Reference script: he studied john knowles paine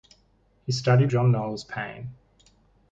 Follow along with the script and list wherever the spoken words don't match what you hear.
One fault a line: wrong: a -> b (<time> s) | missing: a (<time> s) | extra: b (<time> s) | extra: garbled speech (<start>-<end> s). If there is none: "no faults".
no faults